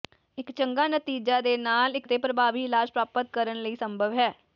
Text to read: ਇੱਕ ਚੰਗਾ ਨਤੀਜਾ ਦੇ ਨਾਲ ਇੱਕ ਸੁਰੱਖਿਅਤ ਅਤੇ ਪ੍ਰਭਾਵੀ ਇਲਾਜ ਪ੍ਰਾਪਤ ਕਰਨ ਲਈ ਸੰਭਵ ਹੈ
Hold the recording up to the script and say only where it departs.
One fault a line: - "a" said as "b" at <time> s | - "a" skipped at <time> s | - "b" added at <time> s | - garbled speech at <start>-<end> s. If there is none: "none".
- "ਸੁਰੱਖਿਅਤ" skipped at 2.1 s